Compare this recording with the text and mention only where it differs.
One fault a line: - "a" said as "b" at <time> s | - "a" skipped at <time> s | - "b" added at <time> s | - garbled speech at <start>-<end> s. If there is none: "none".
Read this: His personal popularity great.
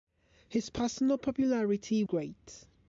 none